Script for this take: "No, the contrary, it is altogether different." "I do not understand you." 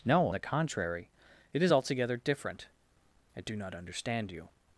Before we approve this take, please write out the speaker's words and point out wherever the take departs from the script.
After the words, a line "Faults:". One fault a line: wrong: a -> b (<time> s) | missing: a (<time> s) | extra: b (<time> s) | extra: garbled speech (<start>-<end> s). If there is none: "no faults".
"No, the contrary, it is altogether different." "I do not understand you."
Faults:
no faults